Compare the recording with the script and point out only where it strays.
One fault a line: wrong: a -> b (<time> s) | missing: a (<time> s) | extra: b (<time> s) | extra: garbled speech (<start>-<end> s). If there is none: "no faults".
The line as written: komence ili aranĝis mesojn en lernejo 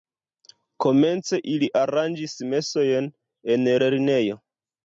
no faults